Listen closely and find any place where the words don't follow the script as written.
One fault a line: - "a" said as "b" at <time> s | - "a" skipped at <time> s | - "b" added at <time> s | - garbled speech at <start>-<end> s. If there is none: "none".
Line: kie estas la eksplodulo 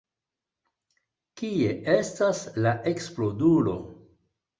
none